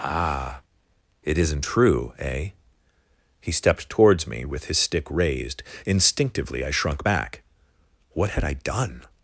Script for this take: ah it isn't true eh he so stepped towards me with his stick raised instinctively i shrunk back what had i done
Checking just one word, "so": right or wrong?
wrong